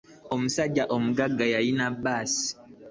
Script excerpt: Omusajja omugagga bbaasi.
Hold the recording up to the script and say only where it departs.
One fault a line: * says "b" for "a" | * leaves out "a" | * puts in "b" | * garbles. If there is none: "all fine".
* puts in "yalina"